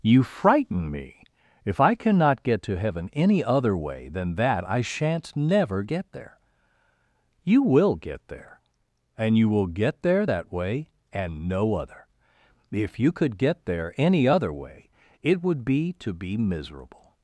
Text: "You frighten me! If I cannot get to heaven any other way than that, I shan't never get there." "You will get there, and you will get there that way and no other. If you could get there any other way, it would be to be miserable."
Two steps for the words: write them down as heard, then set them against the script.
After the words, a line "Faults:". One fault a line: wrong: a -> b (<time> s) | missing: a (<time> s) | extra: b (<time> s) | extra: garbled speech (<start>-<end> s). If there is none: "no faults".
"You frighten me! If I cannot get to heaven any other way than that, I shan't never get there." "You will get there, and you will get there that way and no other. If you could get there any other way, it would be to be miserable."
Faults:
no faults